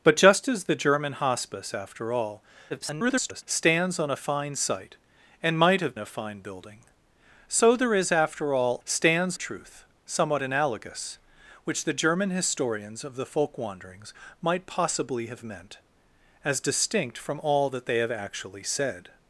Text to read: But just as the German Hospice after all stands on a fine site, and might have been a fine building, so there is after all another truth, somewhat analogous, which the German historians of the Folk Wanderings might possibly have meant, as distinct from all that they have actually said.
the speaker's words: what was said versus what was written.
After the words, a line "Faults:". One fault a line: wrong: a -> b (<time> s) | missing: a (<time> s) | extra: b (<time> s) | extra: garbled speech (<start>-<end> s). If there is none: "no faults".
But just as the German Hospice after all [garbled] stands on a fine site, and might have a fine building, so there is after all stands truth, somewhat analogous, which the German historians of the Folk Wanderings might possibly have meant, as distinct from all that they have actually said.
Faults:
extra: garbled speech (2.7-3.4 s)
missing: been (6.0 s)
wrong: another -> stands (8.8 s)